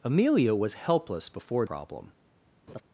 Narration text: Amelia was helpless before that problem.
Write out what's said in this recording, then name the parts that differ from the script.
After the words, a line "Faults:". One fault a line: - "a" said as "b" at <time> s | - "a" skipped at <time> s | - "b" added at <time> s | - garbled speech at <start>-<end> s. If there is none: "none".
Amelia was helpless before problem.
Faults:
- "that" skipped at 1.7 s